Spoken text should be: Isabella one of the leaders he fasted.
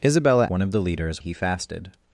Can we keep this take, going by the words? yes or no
yes